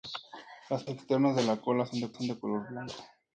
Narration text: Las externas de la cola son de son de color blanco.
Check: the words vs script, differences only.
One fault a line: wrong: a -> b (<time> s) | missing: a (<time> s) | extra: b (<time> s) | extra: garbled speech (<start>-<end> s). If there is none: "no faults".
no faults